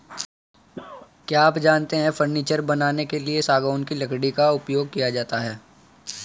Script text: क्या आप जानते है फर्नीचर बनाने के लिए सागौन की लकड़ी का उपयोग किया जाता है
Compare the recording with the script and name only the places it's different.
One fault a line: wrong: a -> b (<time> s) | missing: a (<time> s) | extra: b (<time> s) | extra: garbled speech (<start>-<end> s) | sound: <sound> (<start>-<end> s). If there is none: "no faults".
sound: cough (0.7-1.1 s)